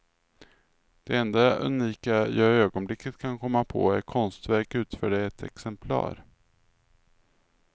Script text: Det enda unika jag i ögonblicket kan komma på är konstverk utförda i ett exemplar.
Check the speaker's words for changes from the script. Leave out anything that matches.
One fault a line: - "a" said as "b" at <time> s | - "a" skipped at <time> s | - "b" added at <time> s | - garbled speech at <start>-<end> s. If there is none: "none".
none